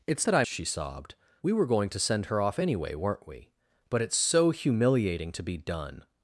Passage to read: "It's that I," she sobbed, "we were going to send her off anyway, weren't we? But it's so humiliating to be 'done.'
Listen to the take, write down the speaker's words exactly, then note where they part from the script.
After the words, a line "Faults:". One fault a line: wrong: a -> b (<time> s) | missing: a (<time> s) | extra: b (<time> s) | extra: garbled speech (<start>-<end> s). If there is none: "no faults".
"It's that I," she sobbed, "we were going to send her off anyway, weren't we? But it's so humiliating to be 'done.'
Faults:
no faults